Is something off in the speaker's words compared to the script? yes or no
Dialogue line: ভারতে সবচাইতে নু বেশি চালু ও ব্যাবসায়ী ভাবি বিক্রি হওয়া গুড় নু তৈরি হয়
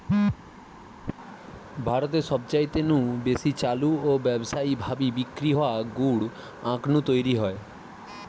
yes